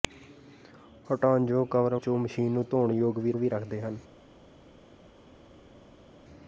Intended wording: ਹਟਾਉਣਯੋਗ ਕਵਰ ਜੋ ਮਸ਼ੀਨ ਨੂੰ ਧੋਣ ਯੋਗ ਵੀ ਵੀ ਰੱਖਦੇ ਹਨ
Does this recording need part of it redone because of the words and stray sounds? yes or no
no